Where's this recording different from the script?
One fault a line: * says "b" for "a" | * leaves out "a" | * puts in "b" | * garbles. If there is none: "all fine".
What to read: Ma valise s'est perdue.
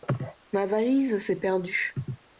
all fine